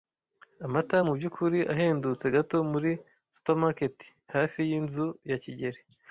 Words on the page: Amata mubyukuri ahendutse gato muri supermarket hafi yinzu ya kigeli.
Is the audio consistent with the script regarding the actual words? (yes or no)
yes